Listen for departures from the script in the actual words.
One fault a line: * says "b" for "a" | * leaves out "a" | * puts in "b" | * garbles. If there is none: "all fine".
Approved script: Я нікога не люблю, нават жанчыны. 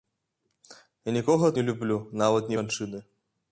all fine